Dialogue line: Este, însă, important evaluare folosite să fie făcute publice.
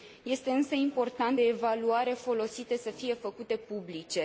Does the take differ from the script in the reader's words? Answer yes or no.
no